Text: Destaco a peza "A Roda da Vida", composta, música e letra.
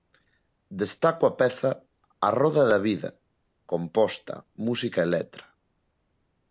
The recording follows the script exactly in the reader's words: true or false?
true